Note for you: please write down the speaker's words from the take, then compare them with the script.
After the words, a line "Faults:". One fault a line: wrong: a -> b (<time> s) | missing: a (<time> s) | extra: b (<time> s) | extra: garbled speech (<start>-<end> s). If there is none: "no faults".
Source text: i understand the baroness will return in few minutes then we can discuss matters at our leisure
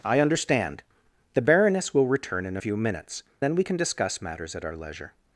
i understand the baroness will return in few minutes then we can discuss matters at our leisure
Faults:
no faults